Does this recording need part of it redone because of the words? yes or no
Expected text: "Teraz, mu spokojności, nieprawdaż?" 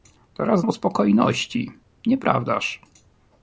no